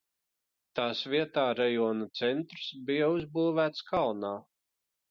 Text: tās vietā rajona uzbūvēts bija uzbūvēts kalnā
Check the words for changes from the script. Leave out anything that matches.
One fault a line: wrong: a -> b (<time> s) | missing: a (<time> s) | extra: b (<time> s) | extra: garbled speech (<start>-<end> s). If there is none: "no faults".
wrong: uzbūvēts -> centrs (2.2 s)